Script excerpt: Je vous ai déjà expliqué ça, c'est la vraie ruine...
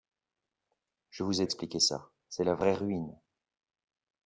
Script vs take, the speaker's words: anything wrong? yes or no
yes